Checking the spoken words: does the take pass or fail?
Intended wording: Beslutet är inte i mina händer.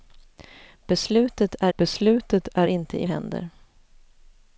fail